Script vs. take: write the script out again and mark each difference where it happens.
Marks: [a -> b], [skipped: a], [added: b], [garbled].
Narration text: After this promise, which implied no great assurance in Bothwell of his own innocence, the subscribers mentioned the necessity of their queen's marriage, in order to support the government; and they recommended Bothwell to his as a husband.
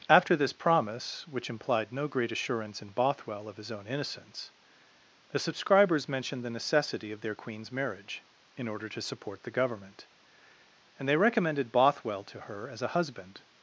After this promise, which implied no great assurance in Bothwell of his own innocence, the subscribers mentioned the necessity of their queen's marriage, in order to support the government; and they recommended Bothwell to [his -> her] as a husband.